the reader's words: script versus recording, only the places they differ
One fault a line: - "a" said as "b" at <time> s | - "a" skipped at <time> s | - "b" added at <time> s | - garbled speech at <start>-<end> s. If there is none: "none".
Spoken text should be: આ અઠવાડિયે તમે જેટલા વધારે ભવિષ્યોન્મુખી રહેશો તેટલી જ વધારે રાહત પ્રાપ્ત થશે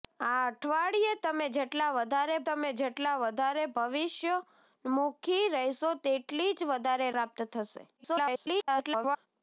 - "તમે જેટલા વધારે" added at 2.5 s
- "રાહત" skipped at 7.1 s
- garbled speech at 8.0-9.3 s